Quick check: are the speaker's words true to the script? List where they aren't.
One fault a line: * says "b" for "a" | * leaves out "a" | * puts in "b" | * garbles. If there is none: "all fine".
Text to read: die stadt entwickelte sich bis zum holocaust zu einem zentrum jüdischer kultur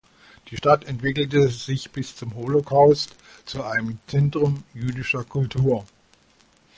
all fine